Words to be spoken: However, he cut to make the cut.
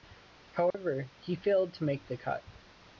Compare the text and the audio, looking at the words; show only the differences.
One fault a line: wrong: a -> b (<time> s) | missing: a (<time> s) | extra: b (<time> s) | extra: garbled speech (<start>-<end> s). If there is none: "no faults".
wrong: cut -> failed (1.4 s)